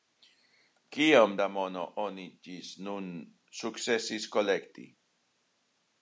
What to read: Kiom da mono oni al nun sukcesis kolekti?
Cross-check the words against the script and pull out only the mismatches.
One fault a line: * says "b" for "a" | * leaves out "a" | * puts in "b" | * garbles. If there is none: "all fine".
* says "ĝis" for "al"